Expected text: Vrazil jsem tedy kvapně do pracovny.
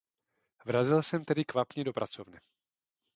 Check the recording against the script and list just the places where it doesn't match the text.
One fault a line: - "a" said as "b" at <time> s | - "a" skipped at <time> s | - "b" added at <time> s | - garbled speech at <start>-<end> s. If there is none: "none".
none